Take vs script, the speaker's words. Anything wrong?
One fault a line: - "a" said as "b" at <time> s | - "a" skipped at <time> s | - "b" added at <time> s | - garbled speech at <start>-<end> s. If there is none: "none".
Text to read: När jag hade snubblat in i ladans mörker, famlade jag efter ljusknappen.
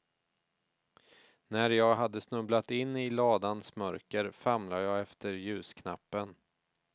none